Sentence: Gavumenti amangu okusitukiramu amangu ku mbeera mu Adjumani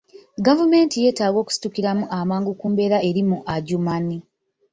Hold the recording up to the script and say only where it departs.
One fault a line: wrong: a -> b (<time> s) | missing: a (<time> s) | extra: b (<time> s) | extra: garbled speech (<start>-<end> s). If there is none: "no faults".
wrong: amangu -> yeetaaga (1.0 s)
extra: eri (3.1 s)